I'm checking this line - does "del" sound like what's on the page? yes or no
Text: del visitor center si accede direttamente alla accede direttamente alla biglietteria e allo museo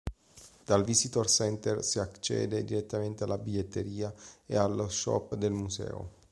no